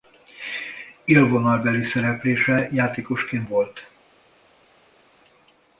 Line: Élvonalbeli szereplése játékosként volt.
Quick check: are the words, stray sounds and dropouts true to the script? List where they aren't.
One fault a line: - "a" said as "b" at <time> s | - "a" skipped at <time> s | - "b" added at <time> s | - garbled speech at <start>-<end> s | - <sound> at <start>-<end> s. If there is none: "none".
none